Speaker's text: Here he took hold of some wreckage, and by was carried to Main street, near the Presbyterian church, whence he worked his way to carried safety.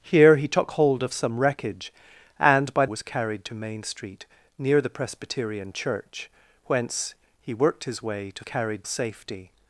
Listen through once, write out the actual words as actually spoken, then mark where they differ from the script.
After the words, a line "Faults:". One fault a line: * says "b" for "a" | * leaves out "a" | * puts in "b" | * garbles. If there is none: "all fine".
Here he took hold of some wreckage, and by was carried to Main street, near the Presbyterian church, whence he worked his way to carried safety.
Faults:
all fine